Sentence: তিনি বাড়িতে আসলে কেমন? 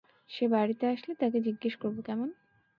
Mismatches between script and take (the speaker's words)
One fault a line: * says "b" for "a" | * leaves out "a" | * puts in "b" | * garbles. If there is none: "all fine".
* says "সে" for "তিনি"
* puts in "তাকে জিজ্ঞেস করব"